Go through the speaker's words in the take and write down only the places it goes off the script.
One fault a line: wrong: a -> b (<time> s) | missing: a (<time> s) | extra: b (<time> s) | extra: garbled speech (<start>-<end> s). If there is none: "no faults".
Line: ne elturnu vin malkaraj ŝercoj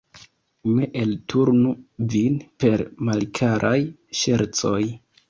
extra: per (2.7 s)